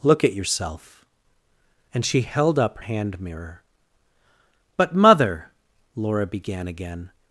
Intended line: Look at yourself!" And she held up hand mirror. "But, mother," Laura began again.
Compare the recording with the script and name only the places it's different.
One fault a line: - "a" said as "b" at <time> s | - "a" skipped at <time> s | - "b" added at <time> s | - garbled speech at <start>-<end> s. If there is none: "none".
none